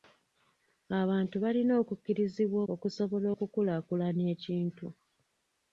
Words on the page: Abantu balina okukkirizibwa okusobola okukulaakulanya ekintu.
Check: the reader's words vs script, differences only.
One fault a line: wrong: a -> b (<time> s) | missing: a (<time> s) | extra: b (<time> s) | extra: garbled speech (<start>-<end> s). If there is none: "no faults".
no faults